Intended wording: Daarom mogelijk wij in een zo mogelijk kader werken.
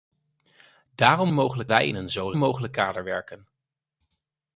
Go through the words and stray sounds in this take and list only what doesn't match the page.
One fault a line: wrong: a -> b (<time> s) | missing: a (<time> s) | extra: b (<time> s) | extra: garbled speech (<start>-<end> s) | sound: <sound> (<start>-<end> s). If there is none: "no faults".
no faults